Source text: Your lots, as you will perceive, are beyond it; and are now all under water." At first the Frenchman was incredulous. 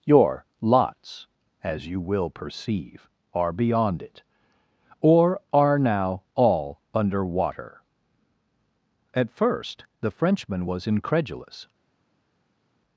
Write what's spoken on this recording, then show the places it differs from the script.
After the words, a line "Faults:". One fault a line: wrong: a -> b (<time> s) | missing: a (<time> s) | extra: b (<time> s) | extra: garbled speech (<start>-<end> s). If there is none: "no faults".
Your lots, as you will perceive, are beyond it; or are now all under water." At first the Frenchman was incredulous.
Faults:
wrong: and -> or (5.0 s)